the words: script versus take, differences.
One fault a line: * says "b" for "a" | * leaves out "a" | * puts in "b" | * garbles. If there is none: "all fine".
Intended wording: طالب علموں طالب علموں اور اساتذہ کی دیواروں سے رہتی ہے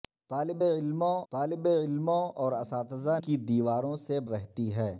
all fine